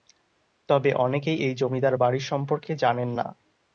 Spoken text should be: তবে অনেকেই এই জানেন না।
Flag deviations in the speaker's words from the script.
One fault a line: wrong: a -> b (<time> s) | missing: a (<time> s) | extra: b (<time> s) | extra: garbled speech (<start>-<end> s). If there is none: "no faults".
extra: জমিদার বাড়ি সম্পর্কে (1.5 s)